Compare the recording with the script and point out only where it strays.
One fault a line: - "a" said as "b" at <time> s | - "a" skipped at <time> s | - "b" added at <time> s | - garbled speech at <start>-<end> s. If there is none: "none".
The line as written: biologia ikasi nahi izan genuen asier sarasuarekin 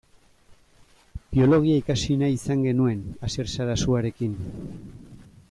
none